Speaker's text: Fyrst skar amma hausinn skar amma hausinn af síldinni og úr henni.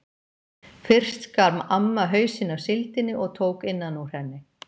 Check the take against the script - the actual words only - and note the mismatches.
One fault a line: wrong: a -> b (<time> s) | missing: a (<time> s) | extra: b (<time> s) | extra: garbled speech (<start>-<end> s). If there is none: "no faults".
missing: skar amma hausinn (2.5 s)
extra: tók innan (3.4 s)